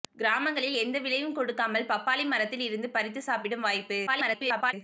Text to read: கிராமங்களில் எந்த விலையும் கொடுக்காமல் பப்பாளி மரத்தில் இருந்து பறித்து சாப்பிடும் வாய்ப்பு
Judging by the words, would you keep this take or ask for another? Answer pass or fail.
fail